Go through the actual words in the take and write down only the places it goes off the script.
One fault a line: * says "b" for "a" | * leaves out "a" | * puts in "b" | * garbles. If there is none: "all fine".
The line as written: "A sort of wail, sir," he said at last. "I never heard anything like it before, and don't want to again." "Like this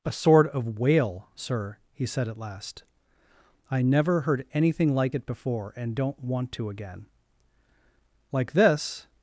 all fine